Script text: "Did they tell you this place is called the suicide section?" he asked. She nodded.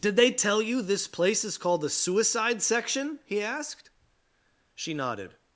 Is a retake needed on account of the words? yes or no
no